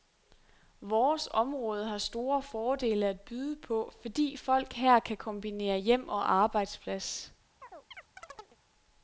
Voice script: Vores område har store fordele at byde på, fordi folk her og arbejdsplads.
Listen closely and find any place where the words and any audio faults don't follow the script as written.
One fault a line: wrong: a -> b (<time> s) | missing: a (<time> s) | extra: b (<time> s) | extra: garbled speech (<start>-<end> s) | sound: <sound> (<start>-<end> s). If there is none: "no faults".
extra: kan kombinere hjem (5.0 s)
sound: chirp (7.6-8.6 s)